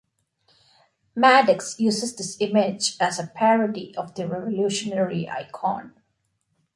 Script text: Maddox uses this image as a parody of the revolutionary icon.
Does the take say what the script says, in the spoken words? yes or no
yes